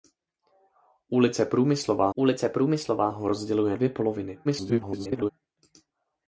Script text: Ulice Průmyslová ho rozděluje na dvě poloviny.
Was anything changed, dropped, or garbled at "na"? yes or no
yes